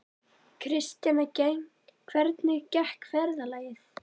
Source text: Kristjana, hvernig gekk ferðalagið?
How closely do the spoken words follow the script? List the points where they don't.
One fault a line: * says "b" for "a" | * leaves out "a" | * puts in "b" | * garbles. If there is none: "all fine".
all fine